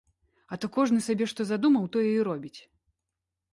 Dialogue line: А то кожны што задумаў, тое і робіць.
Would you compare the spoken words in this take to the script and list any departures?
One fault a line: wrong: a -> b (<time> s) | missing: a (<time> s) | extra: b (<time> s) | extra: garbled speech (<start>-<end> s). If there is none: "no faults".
extra: сабе (1.1 s)